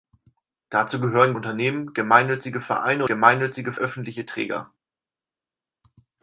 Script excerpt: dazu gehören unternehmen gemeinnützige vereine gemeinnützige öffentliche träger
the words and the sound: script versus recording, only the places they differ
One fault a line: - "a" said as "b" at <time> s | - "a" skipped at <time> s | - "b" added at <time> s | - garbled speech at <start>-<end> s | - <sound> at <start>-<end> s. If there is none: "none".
none